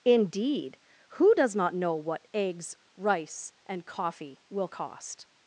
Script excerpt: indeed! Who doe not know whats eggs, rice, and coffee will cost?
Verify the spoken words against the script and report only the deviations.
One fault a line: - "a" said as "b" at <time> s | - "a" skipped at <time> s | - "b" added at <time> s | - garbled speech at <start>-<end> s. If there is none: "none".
- "doe" said as "does" at 1.3 s
- "whats" said as "what" at 2.0 s